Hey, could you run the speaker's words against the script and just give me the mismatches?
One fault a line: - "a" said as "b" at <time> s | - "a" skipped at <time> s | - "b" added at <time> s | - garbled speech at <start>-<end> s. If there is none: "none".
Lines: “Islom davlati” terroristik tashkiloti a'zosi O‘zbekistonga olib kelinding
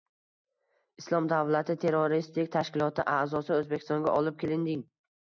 none